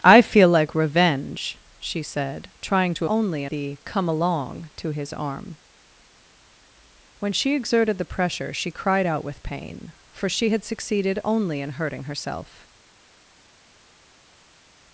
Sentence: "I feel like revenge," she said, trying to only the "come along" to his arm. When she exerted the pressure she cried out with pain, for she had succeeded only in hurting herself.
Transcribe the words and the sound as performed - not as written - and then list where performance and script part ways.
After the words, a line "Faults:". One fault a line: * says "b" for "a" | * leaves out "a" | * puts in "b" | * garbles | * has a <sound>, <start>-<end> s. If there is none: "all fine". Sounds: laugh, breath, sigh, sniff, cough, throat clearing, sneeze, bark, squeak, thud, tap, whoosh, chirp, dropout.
"I feel like revenge," she said, trying to only the "come along" to his arm. When she exerted the pressure she cried out with pain, for she had succeeded only in hurting herself.
Faults:
all fine